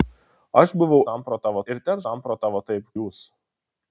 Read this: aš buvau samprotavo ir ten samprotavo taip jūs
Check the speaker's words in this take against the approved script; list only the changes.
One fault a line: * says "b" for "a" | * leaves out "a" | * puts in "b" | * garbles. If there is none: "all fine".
all fine